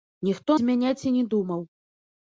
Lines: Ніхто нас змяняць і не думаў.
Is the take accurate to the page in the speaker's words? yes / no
no